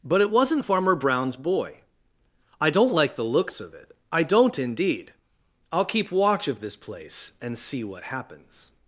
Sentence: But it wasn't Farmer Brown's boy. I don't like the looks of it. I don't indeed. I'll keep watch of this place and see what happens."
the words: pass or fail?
pass